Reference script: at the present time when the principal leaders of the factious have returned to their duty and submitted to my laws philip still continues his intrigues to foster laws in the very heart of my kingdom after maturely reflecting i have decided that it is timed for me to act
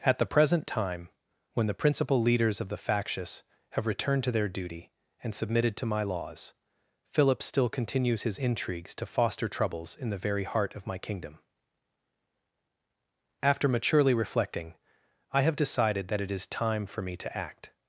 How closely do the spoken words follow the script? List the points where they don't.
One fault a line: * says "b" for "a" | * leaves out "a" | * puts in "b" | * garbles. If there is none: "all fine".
* says "troubles" for "laws"
* says "time" for "timed"